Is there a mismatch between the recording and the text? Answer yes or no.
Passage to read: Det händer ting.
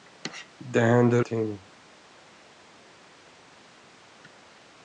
no